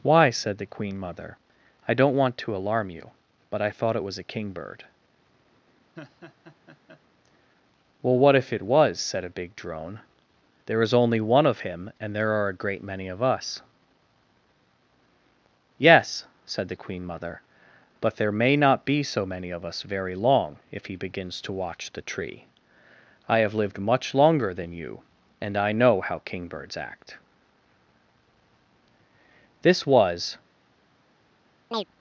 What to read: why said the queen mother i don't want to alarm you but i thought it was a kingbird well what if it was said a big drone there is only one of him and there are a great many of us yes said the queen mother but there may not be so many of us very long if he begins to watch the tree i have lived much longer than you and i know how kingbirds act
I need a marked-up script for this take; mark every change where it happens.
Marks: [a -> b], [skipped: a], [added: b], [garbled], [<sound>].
why said the queen mother i don't want to alarm you but i thought it was a kingbird [laugh] well what if it was said a big drone there is only one of him and there are a great many of us yes said the queen mother but there may not be so many of us very long if he begins to watch the tree i have lived much longer than you and i know how kingbirds act [added: this was] [chirp]